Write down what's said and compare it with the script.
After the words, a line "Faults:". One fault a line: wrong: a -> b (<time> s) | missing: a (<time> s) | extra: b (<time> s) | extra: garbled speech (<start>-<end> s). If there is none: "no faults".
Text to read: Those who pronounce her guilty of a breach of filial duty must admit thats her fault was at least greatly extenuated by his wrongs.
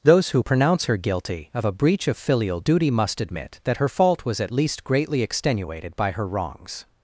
Those who pronounce her guilty of a breach of filial duty must admit that her fault was at least greatly extenuated by her wrongs.
Faults:
wrong: thats -> that (3.6 s)
wrong: his -> her (6.1 s)